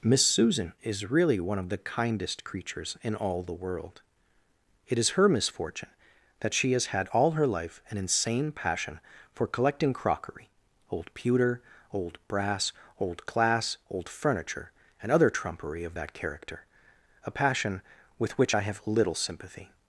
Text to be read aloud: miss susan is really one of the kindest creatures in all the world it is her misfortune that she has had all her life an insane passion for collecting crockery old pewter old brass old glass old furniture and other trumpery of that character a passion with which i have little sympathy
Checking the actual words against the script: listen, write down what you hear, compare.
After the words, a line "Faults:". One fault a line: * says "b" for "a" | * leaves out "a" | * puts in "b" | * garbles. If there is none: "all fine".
miss susan is really one of the kindest creatures in all the world it is her misfortune that she has had all her life an insane passion for collecting crockery old pewter old brass old glass old furniture and other trumpery of that character a passion with which i have little sympathy
Faults:
all fine